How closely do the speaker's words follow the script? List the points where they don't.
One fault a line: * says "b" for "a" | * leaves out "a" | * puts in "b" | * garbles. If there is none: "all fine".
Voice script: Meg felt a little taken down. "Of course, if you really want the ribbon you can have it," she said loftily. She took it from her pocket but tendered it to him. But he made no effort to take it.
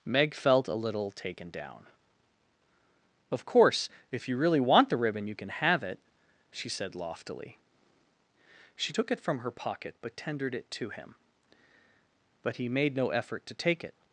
all fine